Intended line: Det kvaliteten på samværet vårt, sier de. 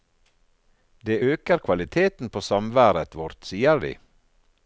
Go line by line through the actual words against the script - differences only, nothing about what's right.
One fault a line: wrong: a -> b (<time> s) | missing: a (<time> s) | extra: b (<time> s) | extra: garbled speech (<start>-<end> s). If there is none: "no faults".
extra: øker (1.3 s)